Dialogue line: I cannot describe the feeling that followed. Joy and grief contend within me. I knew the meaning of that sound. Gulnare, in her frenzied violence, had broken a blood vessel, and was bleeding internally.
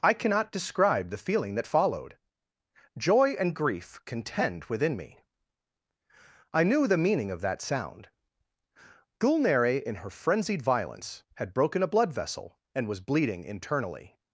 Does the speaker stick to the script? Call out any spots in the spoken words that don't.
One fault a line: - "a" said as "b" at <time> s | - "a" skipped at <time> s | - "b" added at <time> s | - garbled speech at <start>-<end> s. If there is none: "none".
none